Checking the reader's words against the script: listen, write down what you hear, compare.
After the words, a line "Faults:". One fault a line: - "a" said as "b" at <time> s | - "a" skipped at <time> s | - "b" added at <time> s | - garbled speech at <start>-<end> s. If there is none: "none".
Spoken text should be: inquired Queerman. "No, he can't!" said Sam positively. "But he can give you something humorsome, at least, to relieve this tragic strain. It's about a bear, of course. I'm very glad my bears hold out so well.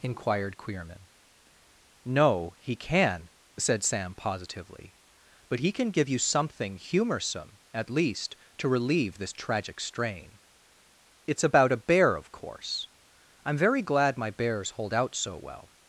inquired Queerman. "No, he can!" said Sam positively. "But he can give you something humorsome, at least, to relieve this tragic strain. It's about a bear, of course. I'm very glad my bears hold out so well.
Faults:
- "can't" said as "can" at 2.8 s